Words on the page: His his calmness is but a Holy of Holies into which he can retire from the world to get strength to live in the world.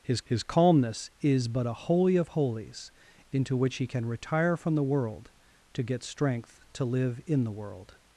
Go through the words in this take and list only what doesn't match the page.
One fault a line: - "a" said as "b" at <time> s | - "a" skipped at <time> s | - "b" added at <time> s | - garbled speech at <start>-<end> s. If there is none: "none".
none